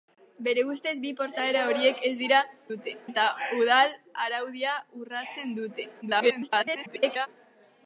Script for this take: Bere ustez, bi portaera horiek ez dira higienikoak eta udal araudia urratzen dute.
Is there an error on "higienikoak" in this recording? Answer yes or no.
yes